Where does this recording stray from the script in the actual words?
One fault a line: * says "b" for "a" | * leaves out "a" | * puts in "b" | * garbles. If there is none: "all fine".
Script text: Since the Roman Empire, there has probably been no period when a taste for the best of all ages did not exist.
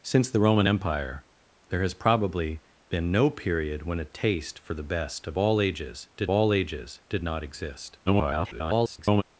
* puts in "all ages did"
* garbles